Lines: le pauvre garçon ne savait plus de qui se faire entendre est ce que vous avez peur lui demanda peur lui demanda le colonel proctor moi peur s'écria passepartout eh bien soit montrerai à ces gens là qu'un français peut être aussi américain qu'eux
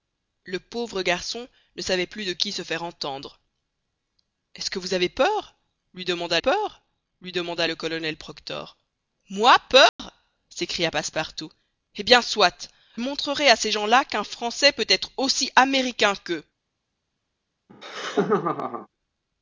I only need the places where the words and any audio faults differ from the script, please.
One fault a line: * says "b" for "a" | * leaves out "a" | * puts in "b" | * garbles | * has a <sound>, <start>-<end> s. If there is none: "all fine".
* has a dropout, 9.9-10.0 s
* has a laugh, 17.7-18.9 s